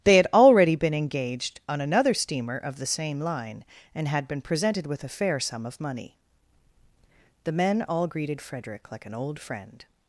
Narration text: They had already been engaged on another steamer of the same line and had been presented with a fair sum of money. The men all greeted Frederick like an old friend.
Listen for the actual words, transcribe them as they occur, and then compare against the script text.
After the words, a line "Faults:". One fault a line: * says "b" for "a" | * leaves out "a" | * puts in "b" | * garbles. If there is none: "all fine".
They had already been engaged on another steamer of the same line and had been presented with a fair sum of money. The men all greeted Frederick like an old friend.
Faults:
all fine